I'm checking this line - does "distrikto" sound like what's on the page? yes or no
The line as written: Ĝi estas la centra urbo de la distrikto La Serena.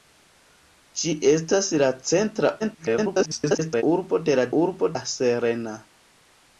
no